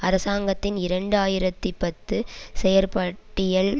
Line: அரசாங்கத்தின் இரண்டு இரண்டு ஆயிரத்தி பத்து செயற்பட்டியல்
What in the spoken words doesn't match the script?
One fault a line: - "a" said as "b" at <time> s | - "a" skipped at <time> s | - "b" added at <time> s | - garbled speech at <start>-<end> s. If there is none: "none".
- "இரண்டு" skipped at 1.2 s